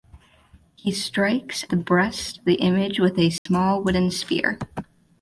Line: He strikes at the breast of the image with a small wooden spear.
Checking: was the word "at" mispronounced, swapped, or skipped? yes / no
yes